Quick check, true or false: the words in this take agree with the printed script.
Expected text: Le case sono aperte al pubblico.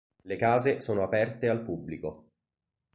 true